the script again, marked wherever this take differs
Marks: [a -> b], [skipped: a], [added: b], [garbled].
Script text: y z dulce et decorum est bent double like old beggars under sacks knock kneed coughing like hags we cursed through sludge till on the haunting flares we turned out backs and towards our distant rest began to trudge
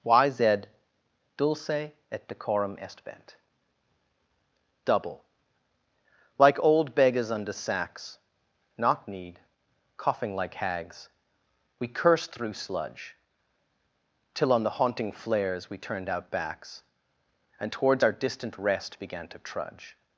y z dulce et decorum est bent double like old beggars under sacks knock kneed coughing like hags we cursed through sludge till on the haunting flares we turned out backs and towards our distant rest began to trudge